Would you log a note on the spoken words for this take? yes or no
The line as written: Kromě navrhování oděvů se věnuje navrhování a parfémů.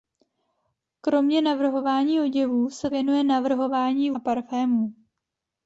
no